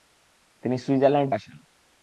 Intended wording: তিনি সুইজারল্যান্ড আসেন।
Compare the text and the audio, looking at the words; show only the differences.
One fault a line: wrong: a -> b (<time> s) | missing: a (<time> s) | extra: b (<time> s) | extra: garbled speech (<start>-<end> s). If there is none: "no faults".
no faults